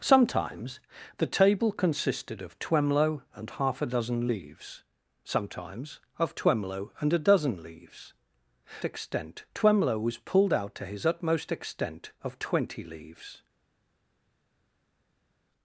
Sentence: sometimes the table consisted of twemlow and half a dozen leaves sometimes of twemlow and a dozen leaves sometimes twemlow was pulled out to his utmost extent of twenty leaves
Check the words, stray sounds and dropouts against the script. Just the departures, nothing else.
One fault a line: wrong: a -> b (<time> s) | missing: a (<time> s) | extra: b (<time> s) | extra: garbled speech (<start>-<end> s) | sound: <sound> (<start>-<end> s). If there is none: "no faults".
wrong: sometimes -> extent (8.8 s)